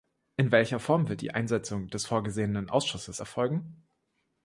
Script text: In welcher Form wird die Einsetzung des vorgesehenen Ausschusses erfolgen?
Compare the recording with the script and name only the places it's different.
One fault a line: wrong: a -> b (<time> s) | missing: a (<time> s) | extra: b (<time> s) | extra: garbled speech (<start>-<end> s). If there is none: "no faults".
no faults